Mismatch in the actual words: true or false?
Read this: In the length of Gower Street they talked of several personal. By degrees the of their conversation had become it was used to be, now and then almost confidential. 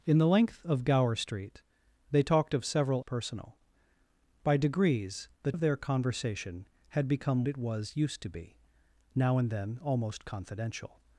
false